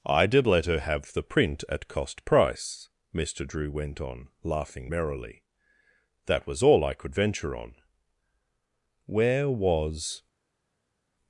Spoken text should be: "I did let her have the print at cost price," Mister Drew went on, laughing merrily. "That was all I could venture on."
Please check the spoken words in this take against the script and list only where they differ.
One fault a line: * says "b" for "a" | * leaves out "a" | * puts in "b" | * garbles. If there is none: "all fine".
* puts in "Where was"